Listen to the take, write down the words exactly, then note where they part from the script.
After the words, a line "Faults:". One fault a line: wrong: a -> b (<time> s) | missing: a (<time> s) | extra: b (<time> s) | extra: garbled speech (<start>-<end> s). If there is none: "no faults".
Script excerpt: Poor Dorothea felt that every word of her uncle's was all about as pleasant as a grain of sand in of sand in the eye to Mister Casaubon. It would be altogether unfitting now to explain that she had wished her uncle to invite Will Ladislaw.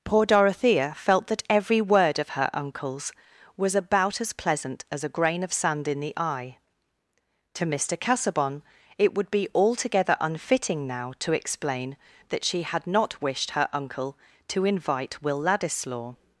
Poor Dorothea felt that every word of her uncle's was about as pleasant as a grain of sand in the eye to Mister Casaubon. It would be altogether unfitting now to explain that she had not wished her uncle to invite Will Ladislaw.
Faults:
missing: all (3.8 s)
missing: of sand in (6.0 s)
extra: not (12.8 s)